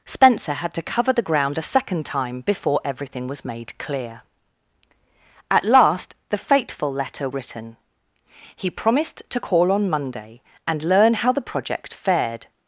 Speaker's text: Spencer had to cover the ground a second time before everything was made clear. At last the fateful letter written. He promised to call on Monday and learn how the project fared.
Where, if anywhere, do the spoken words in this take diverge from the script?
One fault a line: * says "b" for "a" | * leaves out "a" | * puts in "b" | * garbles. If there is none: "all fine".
all fine